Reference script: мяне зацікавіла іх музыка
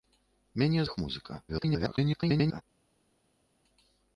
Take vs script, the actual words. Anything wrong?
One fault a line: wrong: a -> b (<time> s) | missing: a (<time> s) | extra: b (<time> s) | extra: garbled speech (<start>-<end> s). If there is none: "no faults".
missing: зацікавіла (0.8 s)
extra: garbled speech (1.5-2.6 s)